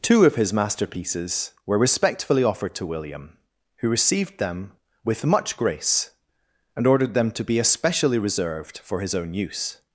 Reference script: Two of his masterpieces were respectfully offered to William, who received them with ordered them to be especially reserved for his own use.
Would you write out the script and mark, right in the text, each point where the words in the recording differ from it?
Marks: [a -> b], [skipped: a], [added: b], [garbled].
Two of his masterpieces were respectfully offered to William, who received them with [added: much grace and] ordered them to be especially reserved for his own use.